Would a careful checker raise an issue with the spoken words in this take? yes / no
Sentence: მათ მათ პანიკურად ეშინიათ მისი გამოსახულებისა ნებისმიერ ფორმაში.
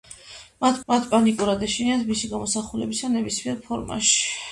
no